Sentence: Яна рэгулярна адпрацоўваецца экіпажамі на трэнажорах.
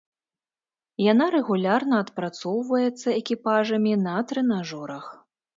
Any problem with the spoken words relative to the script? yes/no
no